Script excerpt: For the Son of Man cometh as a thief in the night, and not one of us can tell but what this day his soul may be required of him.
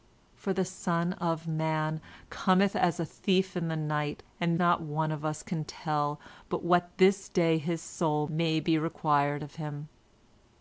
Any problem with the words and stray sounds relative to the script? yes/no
no